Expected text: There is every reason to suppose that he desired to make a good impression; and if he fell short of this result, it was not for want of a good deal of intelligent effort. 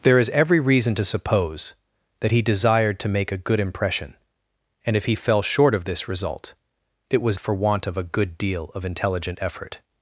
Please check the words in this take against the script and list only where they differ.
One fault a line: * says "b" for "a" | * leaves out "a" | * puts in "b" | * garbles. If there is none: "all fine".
* leaves out "not"